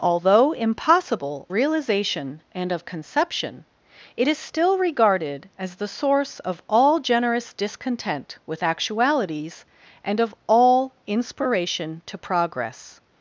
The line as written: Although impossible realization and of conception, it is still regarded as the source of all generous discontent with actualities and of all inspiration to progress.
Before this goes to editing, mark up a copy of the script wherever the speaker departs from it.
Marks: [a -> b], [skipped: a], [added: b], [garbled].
Although impossible realization and of conception, it is still regarded as the source of all generous discontent with actualities and of all inspiration to progress.